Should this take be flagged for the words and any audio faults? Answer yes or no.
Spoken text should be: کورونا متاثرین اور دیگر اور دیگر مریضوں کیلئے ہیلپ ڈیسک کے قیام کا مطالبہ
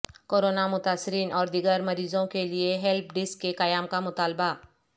yes